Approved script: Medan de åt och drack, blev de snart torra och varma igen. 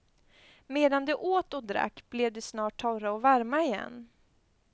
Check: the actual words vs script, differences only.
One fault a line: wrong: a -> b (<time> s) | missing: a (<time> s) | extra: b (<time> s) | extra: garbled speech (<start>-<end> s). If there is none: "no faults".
no faults